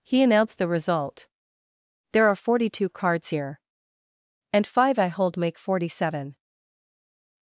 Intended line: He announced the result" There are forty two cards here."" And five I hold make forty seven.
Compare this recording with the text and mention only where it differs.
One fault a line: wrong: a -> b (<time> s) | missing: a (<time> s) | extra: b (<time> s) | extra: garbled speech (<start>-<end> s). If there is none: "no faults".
no faults